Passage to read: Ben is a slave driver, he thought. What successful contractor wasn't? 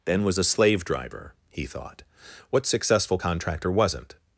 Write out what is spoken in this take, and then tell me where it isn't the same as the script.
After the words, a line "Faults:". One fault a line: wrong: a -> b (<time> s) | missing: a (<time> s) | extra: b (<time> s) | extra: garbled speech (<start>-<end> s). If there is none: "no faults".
Ben was a slave driver, he thought. What successful contractor wasn't?
Faults:
wrong: is -> was (0.2 s)